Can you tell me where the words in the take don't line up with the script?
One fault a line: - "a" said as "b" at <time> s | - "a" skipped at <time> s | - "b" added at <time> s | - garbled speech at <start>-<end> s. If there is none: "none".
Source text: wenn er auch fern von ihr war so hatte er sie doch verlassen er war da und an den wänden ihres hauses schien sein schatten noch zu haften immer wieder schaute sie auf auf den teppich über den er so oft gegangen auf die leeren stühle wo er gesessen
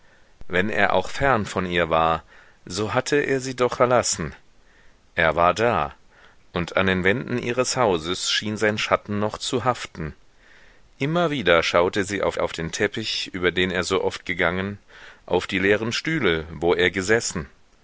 none